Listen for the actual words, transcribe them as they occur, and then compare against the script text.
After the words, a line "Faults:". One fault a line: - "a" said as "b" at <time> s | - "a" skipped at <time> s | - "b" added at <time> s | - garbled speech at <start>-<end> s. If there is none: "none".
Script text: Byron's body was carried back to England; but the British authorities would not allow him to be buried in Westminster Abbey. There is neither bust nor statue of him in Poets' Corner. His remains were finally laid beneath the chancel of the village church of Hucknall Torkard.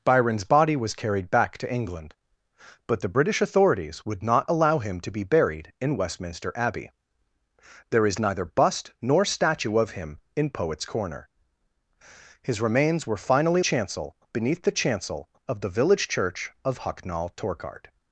Byron's body was carried back to England; but the British authorities would not allow him to be buried in Westminster Abbey. There is neither bust nor statue of him in Poets' Corner. His remains were finally chancel beneath the chancel of the village church of Hucknall Torkard.
Faults:
- "laid" said as "chancel" at 13.6 s